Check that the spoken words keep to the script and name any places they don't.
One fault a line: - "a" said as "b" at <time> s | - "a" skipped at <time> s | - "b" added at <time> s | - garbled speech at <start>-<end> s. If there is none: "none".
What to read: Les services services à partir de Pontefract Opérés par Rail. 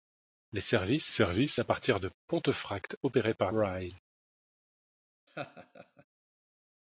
none